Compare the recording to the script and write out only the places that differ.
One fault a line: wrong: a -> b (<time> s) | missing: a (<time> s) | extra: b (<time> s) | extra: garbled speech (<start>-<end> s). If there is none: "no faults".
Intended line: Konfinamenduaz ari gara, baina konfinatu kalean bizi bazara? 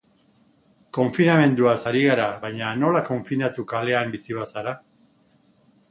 extra: nola (2.8 s)